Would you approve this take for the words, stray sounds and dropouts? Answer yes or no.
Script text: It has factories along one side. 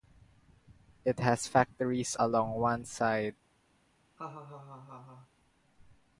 no